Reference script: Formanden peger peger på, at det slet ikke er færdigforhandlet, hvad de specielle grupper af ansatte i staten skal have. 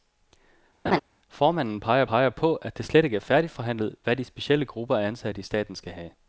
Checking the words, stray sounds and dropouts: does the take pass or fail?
fail